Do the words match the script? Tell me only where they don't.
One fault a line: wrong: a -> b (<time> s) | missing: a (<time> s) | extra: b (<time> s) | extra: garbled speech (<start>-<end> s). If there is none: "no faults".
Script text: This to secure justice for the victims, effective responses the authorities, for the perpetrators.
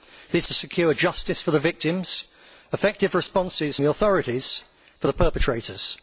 no faults